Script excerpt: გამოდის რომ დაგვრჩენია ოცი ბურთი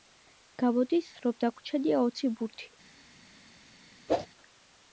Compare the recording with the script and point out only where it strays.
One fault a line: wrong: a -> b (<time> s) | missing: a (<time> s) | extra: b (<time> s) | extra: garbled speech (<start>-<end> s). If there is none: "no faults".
no faults